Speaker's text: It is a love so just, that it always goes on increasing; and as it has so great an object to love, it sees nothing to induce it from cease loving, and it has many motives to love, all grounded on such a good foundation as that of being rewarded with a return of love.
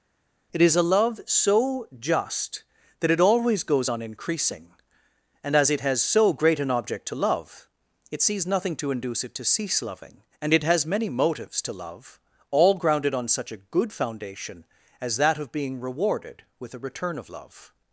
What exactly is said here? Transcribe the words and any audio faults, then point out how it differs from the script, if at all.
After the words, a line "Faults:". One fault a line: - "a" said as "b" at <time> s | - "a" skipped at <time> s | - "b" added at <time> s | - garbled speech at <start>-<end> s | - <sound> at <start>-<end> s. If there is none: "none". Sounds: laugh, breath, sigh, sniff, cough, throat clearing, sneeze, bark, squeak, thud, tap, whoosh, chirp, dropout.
It is a love so just, that it always goes on increasing; and as it has so great an object to love, it sees nothing to induce it to cease loving, and it has many motives to love, all grounded on such a good foundation as that of being rewarded with a return of love.
Faults:
- "from" said as "to" at 9.3 s